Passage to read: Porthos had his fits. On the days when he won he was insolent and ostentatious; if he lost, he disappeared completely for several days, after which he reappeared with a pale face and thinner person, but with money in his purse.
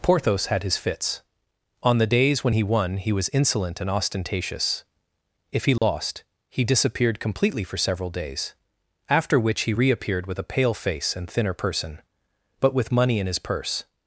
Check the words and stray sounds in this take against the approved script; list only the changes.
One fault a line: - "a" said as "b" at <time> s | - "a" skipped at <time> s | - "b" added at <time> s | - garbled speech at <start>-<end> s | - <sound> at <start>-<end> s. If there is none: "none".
- dropout at 5.8-5.8 s